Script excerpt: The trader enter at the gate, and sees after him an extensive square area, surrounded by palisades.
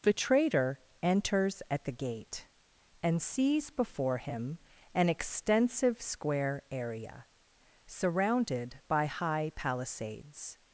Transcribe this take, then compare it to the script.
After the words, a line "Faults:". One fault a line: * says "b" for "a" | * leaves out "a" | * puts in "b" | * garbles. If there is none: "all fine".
The trader enters at the gate, and sees before him an extensive square area, surrounded by high palisades.
Faults:
* says "enters" for "enter"
* says "before" for "after"
* puts in "high"